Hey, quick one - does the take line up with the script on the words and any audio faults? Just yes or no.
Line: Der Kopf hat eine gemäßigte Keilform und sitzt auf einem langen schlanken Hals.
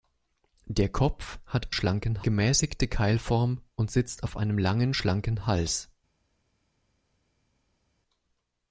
no